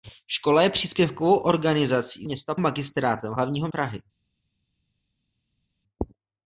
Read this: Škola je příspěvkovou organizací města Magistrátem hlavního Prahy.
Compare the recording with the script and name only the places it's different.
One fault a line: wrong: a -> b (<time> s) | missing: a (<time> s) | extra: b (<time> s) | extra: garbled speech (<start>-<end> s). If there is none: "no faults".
no faults